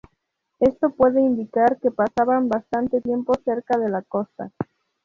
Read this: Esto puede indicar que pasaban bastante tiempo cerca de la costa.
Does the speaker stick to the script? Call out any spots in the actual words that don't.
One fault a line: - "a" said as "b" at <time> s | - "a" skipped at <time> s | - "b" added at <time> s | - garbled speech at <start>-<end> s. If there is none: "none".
none